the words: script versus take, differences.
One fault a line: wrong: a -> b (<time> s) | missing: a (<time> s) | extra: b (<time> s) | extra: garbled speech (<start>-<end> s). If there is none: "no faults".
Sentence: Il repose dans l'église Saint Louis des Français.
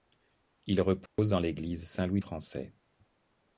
missing: des (2.2 s)